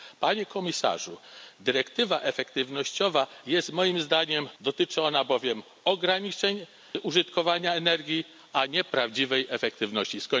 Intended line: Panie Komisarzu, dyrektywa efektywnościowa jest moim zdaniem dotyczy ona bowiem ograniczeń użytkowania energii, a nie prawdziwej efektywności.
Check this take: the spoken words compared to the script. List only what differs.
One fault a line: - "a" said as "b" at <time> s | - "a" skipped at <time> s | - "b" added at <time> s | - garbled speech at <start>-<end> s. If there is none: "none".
none